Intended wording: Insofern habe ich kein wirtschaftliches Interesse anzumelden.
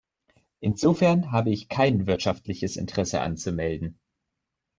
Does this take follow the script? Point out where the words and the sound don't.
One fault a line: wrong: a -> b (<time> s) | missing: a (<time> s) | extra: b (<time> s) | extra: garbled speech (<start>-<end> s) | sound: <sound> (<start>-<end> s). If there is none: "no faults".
no faults